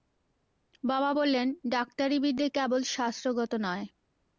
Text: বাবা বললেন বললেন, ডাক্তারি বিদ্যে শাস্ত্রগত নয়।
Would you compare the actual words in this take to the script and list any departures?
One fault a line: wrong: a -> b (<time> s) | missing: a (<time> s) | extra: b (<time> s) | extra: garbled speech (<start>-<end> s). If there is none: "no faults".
missing: বললেন (1.5 s)
extra: কেবল (2.6 s)